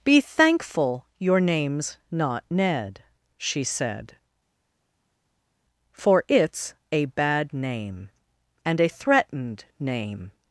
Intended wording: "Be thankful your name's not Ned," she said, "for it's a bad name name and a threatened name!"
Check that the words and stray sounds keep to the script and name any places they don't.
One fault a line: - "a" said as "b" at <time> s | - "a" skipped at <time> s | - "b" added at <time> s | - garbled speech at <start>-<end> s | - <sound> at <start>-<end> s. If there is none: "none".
- "name" skipped at 8.1 s